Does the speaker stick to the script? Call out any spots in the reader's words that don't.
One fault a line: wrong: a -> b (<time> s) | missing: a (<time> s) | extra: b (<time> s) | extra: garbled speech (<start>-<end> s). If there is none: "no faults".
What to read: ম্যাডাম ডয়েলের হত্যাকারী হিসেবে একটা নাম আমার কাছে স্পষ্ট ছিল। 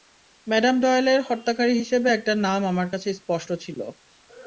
no faults